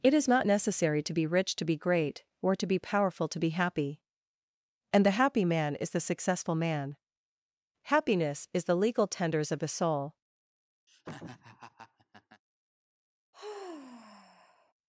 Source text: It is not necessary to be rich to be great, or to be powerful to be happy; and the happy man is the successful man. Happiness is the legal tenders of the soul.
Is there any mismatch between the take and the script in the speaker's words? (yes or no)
no